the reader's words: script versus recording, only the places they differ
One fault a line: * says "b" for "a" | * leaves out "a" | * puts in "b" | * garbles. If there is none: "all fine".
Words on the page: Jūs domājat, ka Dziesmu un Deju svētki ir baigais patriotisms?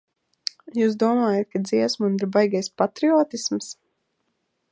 * leaves out "Deju svētki"